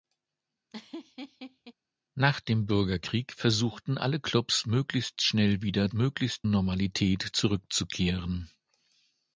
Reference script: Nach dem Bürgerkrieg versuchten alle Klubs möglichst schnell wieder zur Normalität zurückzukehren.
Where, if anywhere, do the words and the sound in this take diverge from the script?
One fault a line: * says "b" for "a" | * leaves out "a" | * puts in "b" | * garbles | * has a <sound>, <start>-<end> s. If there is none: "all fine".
* has a laugh, 0.7-1.7 s
* says "möglichst" for "zur"